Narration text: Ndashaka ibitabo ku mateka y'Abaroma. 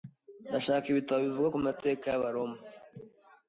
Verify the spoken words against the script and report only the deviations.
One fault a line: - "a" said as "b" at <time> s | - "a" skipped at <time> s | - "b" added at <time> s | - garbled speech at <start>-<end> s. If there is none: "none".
- "bivuga" added at 1.3 s